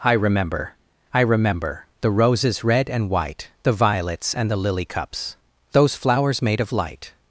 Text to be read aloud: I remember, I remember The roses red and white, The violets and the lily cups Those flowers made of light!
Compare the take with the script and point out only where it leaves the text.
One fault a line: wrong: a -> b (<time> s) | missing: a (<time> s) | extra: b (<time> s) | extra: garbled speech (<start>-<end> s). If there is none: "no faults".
no faults